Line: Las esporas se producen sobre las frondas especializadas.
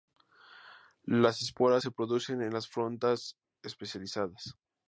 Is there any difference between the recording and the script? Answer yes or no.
yes